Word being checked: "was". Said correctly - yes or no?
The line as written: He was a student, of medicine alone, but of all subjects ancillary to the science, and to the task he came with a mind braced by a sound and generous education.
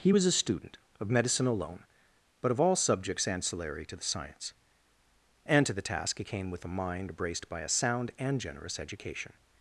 yes